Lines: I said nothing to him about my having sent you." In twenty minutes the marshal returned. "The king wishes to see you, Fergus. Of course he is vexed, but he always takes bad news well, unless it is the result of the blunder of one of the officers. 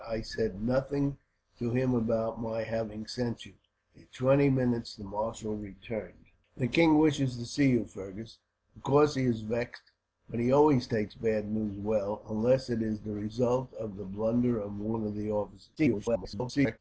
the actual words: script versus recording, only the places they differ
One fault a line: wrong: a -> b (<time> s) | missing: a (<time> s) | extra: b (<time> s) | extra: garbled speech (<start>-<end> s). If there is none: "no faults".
extra: garbled speech (15.8-16.8 s)